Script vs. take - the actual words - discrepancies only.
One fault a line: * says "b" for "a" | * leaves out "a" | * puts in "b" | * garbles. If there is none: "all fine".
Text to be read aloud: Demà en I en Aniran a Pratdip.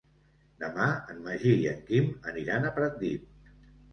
* puts in "Magí"
* puts in "Quim"